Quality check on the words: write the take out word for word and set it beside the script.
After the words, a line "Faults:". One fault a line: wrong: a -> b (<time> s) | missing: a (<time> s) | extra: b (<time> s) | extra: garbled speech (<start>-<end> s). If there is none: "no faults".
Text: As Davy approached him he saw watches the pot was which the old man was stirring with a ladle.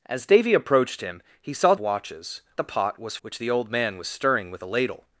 As Davy approached him he saw watches the pot was which the old man was stirring with a ladle.
Faults:
no faults